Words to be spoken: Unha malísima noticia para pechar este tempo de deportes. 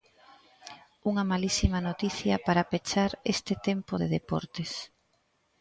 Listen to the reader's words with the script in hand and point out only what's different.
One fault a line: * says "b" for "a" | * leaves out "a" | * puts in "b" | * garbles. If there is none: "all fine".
all fine